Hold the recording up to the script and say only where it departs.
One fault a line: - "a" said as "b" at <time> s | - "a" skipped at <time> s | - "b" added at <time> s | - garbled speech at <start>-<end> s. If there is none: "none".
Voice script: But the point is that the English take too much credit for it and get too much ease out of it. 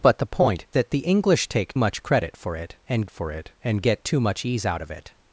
- "is" skipped at 0.7 s
- "too" skipped at 1.7 s
- "for it and" added at 3.1 s